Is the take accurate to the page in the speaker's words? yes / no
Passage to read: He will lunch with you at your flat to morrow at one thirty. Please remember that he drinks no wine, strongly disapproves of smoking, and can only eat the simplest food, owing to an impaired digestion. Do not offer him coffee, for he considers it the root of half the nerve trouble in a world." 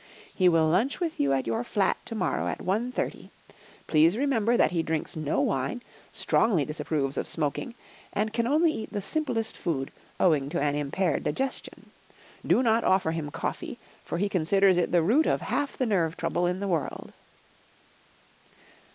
no